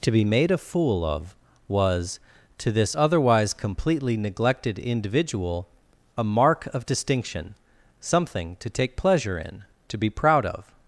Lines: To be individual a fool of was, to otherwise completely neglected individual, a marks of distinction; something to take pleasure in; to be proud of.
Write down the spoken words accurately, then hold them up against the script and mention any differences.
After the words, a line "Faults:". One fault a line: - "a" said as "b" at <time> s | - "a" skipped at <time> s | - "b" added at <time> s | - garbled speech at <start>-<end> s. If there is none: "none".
To be made a fool of was, to this otherwise completely neglected individual, a mark of distinction; something to take pleasure in; to be proud of.
Faults:
- "individual" said as "made" at 0.2 s
- "this" added at 2.7 s
- "marks" said as "mark" at 6.2 s